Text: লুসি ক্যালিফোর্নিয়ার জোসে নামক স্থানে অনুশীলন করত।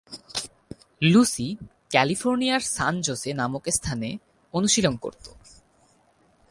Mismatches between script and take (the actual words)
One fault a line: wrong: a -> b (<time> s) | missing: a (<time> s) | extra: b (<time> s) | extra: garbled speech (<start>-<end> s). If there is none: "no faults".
extra: সান (2.6 s)